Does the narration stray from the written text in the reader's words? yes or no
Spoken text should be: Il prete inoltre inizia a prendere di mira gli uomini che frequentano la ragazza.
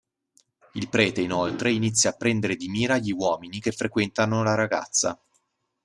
no